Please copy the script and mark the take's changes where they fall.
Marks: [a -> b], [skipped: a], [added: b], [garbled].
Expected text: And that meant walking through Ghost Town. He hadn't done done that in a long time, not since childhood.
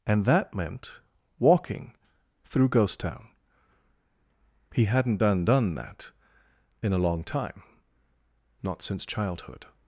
And that meant walking through Ghost Town. He hadn't done done that in a long time, not since childhood.